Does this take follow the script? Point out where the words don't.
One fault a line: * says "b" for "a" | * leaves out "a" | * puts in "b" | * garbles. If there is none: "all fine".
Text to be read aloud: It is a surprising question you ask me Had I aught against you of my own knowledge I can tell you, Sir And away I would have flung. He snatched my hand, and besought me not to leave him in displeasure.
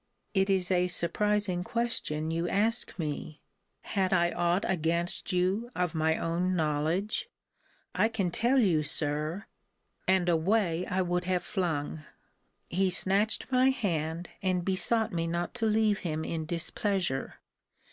all fine